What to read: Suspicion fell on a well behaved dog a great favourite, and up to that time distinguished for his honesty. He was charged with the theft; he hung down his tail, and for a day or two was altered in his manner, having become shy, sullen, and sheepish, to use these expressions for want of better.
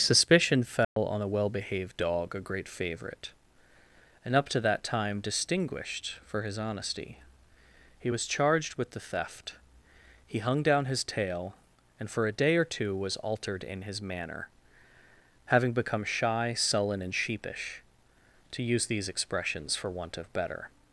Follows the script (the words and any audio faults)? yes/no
no